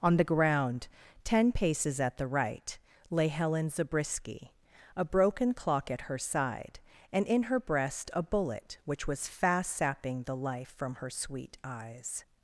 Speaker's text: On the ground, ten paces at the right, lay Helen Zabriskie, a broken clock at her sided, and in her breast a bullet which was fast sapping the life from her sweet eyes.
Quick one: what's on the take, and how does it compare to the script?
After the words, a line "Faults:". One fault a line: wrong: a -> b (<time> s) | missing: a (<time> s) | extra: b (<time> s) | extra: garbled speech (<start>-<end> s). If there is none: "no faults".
On the ground, ten paces at the right, lay Helen Zabriskie, a broken clock at her side, and in her breast a bullet which was fast sapping the life from her sweet eyes.
Faults:
wrong: sided -> side (6.2 s)